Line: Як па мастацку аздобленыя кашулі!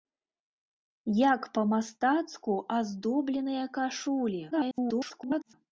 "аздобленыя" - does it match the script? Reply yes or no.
yes